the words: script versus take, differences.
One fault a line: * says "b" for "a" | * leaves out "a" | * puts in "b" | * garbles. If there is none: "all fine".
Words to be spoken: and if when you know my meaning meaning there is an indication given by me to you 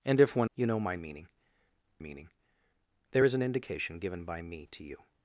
all fine